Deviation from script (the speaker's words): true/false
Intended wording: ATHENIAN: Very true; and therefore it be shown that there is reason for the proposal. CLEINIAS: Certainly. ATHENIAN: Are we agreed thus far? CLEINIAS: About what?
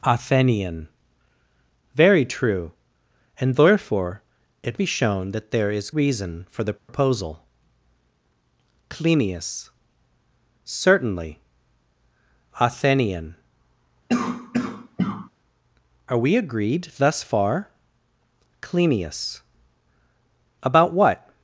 false